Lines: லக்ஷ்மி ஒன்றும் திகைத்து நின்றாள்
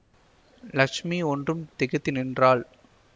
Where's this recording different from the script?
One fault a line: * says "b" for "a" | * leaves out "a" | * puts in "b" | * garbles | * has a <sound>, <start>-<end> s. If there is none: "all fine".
all fine